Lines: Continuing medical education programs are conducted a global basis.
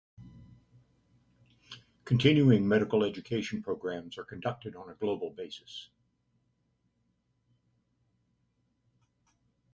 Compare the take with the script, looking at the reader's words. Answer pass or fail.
fail